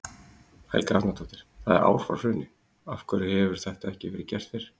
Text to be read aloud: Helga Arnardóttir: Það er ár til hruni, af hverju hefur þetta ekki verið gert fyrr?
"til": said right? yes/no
no